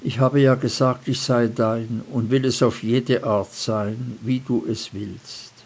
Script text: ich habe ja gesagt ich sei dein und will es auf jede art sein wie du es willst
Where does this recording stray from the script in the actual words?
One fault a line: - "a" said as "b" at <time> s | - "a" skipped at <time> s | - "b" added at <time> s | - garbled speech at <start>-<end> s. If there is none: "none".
none